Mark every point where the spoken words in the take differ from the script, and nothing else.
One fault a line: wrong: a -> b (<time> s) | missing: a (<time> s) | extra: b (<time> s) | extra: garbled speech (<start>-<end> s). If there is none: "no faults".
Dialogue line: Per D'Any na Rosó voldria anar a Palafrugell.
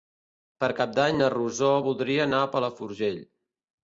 extra: Cap (0.8 s)